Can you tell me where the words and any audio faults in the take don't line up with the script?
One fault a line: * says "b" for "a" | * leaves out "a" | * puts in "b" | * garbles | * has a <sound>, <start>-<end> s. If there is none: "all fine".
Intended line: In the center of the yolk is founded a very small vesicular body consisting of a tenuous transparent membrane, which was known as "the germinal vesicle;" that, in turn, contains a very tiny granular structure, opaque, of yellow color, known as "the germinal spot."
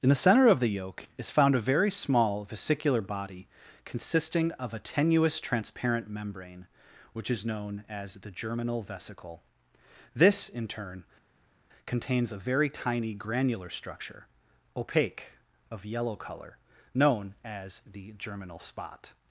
* says "found" for "founded"
* says "is" for "was"
* says "this" for "that"